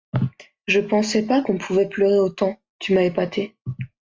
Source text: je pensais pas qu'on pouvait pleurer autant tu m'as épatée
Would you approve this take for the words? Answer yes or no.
yes